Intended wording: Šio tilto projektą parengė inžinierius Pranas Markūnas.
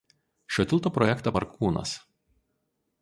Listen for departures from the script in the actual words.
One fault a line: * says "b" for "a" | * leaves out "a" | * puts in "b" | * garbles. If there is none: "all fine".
* leaves out "parengė inžinierius Pranas"